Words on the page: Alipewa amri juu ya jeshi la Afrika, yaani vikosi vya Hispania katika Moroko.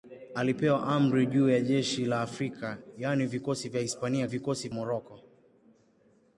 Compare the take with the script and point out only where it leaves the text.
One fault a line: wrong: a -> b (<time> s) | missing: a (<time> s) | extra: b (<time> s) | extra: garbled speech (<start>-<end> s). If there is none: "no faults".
wrong: katika -> vikosi (4.2 s)